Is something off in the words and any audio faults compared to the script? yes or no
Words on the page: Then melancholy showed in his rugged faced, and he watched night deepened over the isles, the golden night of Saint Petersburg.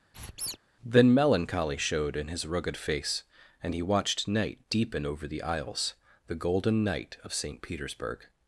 yes